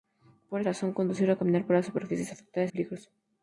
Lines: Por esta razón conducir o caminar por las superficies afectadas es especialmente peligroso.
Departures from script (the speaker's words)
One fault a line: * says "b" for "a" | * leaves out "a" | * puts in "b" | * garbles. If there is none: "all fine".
* leaves out "esta"
* leaves out "es especialmente"